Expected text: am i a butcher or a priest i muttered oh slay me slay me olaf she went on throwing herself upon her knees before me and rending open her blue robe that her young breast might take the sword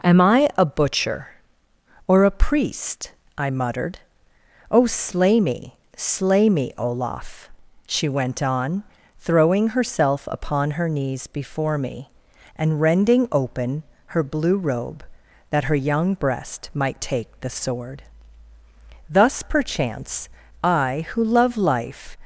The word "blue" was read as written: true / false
true